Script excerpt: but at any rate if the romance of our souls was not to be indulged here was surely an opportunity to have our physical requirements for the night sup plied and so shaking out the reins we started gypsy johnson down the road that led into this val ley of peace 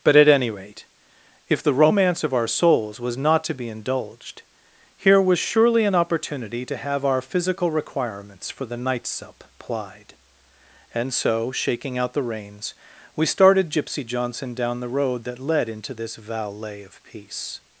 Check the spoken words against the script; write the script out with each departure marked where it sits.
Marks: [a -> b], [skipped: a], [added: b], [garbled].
but at any rate if the romance of our souls was not to be indulged here was surely an opportunity to have our physical requirements for the night sup plied and so shaking out the reins we started gypsy johnson down the road that led into this [val ley -> valet] of peace